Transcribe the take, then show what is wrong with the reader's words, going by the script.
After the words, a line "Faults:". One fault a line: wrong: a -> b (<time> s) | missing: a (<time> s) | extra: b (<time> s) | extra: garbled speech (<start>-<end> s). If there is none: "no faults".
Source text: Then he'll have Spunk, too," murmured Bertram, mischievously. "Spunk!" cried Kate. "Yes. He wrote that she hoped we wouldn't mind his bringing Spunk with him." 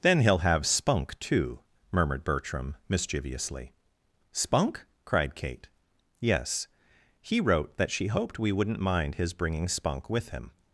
Then he'll have Spunk, too," murmured Bertram, mischievously. "Spunk!" cried Kate. "Yes. He wrote that she hoped we wouldn't mind his bringing Spunk with him."
Faults:
no faults